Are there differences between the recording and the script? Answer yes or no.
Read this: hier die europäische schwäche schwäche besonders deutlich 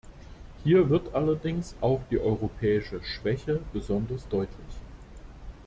yes